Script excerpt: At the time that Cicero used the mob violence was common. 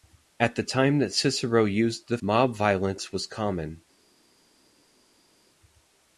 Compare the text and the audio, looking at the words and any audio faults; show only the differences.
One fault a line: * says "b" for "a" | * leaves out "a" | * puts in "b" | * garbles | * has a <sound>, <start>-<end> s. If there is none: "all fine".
all fine